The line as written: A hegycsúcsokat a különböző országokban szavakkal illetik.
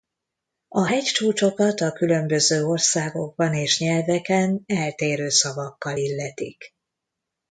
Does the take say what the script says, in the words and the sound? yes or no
no